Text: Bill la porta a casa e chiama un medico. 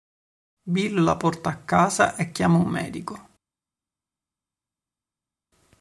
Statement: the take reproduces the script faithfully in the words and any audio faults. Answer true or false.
true